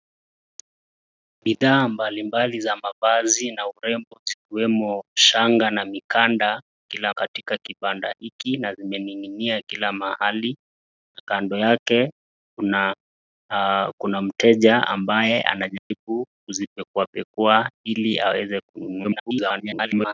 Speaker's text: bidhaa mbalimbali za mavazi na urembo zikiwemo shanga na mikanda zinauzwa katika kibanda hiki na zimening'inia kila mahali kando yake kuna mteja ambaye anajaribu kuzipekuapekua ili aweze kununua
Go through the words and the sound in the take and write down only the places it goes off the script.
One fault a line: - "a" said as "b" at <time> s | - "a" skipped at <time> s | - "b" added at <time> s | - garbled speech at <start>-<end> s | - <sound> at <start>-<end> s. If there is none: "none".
- "zinauzwa" said as "kila" at 6.8 s
- dropout at 15.8-15.9 s
- garbled speech at 19.0-20.1 s